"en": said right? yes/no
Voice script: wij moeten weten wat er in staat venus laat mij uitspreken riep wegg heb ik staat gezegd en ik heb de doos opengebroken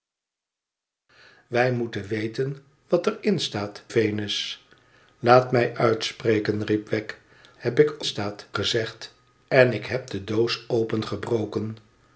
yes